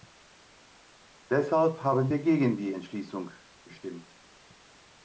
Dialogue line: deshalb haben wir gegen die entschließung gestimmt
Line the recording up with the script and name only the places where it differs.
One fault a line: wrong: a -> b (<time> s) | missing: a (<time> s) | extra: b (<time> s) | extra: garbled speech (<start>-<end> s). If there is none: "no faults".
no faults